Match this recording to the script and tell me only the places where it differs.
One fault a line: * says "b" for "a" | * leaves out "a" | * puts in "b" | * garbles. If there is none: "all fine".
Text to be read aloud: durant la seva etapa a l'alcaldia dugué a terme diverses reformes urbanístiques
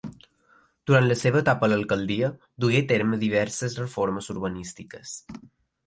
all fine